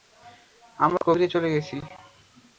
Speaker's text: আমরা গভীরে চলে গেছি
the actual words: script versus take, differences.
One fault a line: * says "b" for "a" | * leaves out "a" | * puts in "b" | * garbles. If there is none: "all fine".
all fine